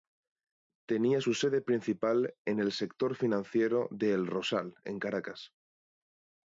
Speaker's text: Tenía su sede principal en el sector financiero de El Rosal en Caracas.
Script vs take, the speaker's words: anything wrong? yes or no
no